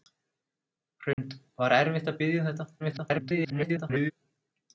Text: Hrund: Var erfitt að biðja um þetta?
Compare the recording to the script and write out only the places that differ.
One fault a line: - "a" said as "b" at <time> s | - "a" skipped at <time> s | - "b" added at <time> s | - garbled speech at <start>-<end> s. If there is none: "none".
- garbled speech at 2.8-4.1 s